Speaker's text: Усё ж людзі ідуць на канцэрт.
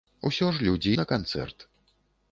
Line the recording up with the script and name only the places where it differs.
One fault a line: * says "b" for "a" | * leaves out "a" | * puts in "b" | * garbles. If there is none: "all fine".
* leaves out "ідуць"